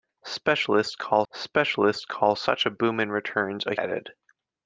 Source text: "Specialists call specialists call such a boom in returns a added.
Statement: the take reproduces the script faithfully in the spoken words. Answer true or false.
true